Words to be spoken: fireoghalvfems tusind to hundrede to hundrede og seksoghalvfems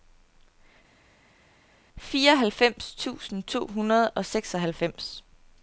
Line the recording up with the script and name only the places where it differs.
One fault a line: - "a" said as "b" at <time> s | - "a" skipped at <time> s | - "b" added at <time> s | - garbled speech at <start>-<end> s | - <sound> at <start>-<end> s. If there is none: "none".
- "to hundrede" skipped at 4.1 s